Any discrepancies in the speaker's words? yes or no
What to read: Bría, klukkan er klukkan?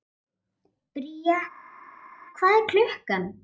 yes